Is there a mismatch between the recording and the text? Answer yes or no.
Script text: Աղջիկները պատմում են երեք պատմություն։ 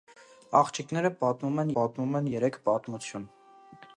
yes